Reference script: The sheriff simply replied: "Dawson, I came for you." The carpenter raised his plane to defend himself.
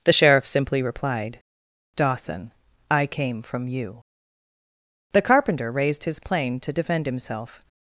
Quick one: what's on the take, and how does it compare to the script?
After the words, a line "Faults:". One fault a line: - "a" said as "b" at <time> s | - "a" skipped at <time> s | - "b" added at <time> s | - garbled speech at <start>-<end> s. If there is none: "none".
The sheriff simply replied: "Dawson, I came from you." The carpenter raised his plane to defend himself.
Faults:
- "for" said as "from" at 3.4 s